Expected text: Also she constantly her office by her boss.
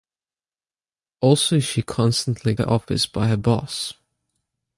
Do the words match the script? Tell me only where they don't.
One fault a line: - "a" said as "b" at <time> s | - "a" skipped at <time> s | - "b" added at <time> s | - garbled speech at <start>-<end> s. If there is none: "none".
none